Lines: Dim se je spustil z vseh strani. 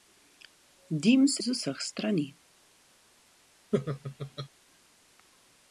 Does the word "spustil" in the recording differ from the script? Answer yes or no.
yes